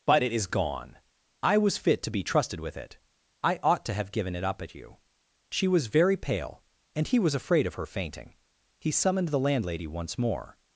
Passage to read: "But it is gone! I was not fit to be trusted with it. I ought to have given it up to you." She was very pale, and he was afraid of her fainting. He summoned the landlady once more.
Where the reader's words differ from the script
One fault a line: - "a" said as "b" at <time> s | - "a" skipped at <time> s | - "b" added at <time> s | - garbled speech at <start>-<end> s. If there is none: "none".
- "not" skipped at 1.8 s
- "to" said as "at" at 4.6 s